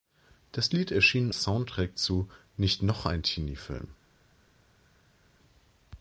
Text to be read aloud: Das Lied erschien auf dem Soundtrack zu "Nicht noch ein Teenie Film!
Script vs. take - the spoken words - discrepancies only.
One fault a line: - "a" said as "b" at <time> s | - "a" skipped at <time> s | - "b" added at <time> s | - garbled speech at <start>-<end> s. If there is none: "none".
- "auf dem" skipped at 1.3 s